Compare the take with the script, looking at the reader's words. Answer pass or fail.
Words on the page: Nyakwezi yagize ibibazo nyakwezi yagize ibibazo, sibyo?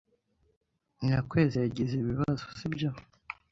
fail